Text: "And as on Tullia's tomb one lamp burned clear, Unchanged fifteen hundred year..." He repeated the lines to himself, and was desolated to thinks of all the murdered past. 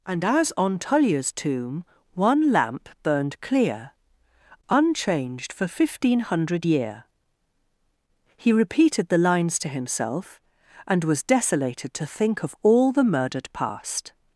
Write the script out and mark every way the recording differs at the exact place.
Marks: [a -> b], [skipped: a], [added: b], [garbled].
"And as on Tullia's tomb one lamp burned clear, Unchanged [added: for] fifteen hundred year..." He repeated the lines to himself, and was desolated to [thinks -> think] of all the murdered past.